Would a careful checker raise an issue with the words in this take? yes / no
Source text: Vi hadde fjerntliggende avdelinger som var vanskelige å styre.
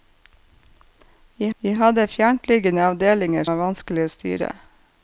yes